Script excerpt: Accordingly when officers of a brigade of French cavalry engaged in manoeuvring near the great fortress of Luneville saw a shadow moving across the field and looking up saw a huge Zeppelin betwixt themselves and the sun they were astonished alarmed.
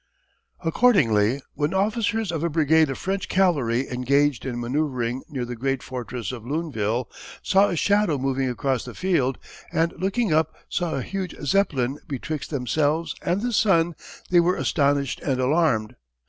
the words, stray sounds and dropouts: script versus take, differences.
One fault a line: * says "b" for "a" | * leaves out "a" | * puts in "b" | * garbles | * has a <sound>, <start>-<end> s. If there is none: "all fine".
* puts in "and"